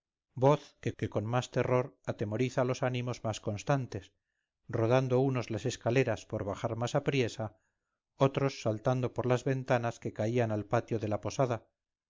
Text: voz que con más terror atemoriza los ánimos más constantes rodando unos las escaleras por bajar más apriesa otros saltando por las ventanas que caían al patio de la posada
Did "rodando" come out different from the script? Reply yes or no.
no